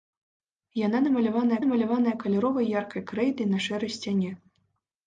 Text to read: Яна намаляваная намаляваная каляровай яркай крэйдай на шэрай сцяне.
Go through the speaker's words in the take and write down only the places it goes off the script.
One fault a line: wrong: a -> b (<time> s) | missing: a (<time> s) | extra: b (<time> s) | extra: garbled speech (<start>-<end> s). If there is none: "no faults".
no faults